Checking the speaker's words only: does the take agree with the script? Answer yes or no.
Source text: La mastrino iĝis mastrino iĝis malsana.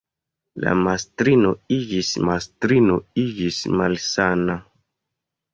yes